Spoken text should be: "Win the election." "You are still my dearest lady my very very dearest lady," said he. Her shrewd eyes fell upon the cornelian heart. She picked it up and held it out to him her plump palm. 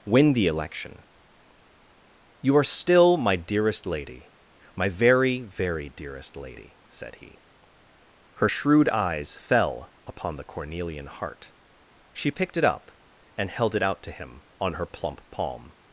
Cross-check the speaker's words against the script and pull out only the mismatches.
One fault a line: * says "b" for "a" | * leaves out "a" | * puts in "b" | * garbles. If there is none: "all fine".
* puts in "on"